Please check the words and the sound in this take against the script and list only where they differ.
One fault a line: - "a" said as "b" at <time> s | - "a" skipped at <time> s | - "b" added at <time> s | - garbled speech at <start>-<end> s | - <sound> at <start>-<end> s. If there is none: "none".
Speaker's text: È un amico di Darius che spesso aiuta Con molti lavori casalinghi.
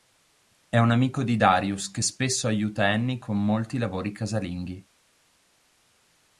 - "Annie" added at 2.9 s